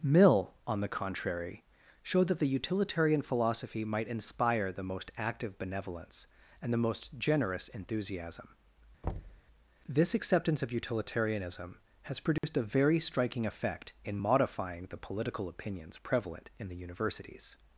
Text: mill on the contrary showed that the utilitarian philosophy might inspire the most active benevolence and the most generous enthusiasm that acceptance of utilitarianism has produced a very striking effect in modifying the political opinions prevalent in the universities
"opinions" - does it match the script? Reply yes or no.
yes